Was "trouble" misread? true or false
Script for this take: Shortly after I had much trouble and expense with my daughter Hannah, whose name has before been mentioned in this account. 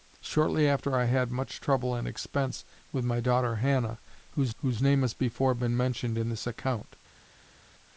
false